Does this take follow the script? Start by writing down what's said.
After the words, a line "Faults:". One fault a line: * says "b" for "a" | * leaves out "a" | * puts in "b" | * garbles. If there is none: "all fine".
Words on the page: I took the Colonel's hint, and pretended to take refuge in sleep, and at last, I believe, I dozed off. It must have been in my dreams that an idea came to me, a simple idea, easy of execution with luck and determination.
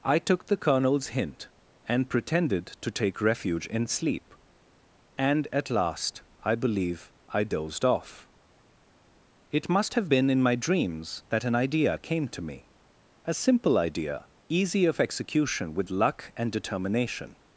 I took the Colonel's hint, and pretended to take refuge in sleep, and at last, I believe, I dozed off. It must have been in my dreams that an idea came to me, a simple idea, easy of execution with luck and determination.
Faults:
all fine